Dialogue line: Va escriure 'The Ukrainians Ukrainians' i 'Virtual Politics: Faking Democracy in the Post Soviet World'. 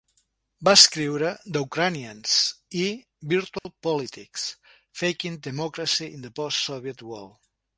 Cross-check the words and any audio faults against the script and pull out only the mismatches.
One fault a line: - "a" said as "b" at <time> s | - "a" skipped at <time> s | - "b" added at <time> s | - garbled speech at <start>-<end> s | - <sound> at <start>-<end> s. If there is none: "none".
- "Ukrainians" skipped at 2.4 s
- dropout at 3.6-3.6 s